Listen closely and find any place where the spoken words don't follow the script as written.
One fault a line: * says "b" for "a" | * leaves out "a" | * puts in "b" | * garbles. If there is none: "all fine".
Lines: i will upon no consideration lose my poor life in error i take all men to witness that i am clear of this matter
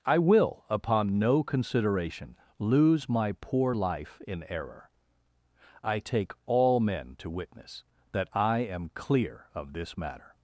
all fine